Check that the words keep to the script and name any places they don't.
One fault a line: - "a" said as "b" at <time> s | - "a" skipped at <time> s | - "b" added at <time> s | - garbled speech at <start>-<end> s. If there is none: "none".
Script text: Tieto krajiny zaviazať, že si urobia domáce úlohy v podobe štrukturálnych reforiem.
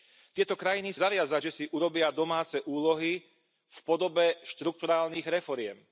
none